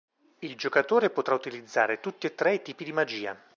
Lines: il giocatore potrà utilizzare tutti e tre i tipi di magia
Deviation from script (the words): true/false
false